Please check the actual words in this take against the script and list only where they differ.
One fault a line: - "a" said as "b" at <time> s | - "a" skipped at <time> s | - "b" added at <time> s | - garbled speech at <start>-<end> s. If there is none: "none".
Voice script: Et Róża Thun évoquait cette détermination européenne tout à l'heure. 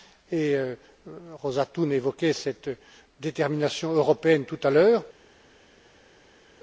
none